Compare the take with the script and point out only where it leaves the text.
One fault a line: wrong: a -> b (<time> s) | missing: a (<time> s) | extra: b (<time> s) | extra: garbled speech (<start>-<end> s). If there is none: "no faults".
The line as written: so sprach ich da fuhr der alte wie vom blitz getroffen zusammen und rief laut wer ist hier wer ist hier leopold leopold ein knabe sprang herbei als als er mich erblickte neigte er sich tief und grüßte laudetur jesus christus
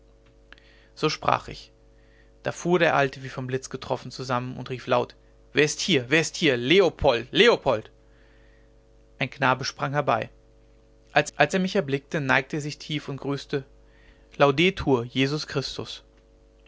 no faults